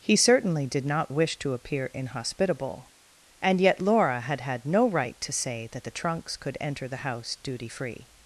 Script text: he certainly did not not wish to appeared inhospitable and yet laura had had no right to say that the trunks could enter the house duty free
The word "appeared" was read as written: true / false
false